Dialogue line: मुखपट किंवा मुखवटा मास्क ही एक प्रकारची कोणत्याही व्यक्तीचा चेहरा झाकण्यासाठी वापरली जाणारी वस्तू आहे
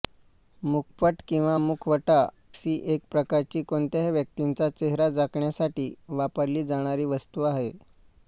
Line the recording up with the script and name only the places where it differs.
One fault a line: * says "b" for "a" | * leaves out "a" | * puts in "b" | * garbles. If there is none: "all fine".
* leaves out "मास्क"